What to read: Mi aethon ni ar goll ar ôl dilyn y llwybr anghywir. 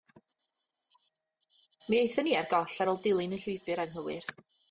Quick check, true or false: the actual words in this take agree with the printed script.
true